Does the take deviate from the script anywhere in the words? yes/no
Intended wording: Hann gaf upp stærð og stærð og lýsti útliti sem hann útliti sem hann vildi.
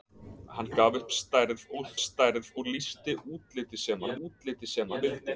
no